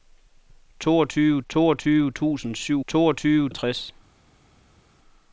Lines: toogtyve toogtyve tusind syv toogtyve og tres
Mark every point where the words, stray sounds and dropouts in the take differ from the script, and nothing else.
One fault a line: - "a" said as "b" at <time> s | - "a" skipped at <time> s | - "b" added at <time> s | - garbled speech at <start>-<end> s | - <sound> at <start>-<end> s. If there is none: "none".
none